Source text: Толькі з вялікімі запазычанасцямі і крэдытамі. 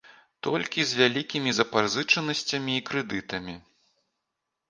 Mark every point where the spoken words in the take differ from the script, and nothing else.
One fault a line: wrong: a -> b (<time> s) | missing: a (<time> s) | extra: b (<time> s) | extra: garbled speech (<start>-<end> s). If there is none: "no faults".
no faults